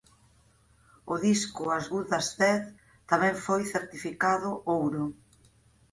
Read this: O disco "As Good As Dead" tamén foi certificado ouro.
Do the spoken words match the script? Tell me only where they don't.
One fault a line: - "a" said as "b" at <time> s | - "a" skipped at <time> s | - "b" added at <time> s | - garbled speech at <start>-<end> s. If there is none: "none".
none